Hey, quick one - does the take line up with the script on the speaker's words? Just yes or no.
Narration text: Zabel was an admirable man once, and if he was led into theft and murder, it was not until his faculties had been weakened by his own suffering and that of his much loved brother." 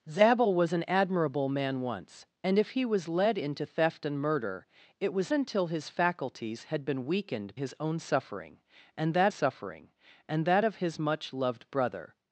no